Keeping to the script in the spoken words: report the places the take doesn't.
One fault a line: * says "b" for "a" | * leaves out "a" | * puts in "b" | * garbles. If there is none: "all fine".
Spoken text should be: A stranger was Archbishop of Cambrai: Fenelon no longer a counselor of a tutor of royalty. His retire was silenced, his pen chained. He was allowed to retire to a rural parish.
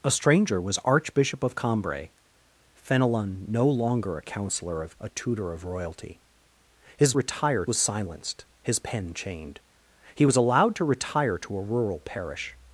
all fine